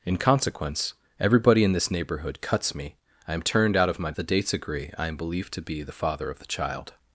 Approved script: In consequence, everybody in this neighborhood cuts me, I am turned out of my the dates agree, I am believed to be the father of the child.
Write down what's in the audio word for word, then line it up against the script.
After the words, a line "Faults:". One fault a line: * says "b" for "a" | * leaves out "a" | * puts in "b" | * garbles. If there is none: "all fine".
In consequence, everybody in this neighborhood cuts me, I am turned out of my the dates agree, I am believed to be the father of the child.
Faults:
all fine